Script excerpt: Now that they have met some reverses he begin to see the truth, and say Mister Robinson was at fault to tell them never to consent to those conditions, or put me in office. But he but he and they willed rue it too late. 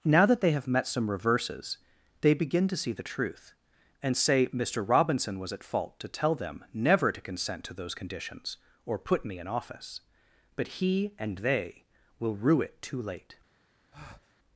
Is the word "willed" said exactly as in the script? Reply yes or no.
no